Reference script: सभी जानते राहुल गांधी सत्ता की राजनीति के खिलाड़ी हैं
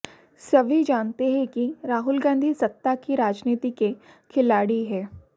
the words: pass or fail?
fail